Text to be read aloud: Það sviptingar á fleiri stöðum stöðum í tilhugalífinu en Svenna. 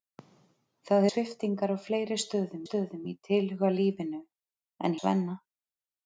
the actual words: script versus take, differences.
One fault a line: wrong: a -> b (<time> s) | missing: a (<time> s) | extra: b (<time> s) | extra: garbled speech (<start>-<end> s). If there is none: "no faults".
no faults